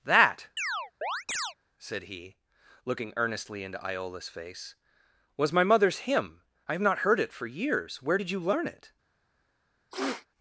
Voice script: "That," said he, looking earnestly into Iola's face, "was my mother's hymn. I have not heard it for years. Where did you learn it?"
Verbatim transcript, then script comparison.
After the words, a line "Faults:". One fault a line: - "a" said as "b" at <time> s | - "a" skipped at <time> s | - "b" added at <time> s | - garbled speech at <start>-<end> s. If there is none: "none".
"That," said he, looking earnestly into Iola's face, "was my mother's hymn. I have not heard it for years. Where did you learn it?"
Faults:
none